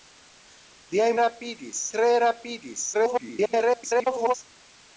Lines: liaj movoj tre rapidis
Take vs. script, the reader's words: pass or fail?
fail